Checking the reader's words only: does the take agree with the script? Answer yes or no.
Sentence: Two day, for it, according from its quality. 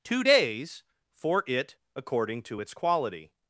no